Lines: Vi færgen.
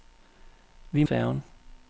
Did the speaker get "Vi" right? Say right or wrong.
right